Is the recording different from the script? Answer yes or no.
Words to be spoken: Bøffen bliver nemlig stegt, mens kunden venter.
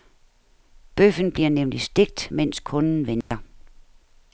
no